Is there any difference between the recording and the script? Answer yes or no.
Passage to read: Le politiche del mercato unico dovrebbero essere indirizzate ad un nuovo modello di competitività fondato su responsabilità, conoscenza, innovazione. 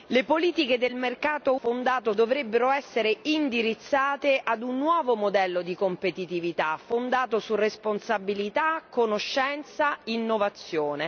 yes